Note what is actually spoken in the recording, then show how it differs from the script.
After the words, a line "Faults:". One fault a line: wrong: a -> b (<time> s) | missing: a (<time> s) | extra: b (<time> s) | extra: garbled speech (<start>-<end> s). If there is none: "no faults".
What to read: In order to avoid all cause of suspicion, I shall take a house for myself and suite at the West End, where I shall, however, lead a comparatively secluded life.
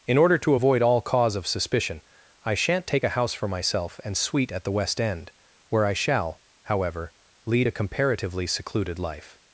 In order to avoid all cause of suspicion, I shan't take a house for myself and suite at the West End, where I shall, however, lead a comparatively secluded life.
Faults:
wrong: shall -> shan't (2.5 s)